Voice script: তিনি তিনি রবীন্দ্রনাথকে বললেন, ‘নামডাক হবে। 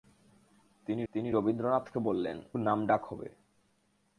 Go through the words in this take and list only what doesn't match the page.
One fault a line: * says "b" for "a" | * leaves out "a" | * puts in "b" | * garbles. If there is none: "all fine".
all fine